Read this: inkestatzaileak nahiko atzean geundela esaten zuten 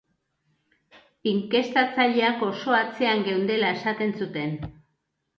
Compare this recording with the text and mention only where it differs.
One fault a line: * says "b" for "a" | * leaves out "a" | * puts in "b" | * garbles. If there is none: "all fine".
* says "oso" for "nahiko"